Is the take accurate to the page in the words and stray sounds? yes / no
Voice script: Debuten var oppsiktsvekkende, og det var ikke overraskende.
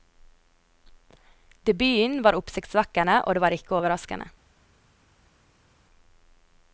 yes